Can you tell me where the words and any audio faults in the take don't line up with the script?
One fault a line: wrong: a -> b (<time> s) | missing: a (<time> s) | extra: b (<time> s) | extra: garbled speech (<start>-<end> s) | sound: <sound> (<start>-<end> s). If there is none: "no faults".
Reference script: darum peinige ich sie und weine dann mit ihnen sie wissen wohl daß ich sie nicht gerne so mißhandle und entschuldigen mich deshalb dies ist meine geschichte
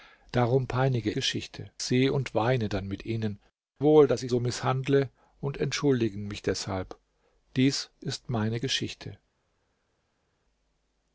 wrong: ich -> geschichte (1.1 s)
missing: sie wissen (3.4 s)
missing: sie nicht gerne (4.3 s)